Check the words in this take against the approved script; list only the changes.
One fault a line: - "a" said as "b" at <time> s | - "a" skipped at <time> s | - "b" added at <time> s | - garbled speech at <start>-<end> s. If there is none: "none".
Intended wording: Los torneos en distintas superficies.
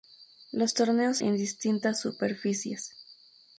none